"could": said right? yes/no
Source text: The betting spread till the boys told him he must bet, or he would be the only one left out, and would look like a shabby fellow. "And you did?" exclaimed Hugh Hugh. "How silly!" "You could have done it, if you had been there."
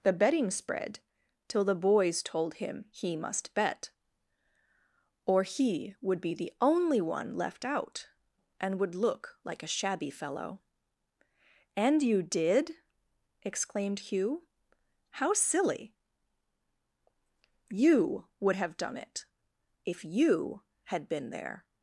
no